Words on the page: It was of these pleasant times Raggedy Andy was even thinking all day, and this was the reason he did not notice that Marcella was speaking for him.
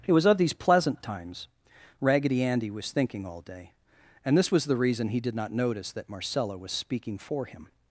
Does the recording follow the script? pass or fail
fail